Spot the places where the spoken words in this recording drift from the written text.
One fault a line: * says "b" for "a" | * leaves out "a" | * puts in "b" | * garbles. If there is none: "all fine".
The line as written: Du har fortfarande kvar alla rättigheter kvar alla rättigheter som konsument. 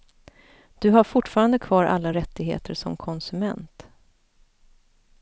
* leaves out "kvar alla rättigheter"